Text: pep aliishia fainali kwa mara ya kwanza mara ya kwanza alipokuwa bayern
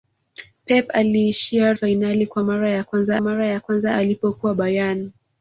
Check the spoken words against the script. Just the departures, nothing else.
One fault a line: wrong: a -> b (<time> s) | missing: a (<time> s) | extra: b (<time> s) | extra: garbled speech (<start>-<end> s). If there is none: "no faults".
no faults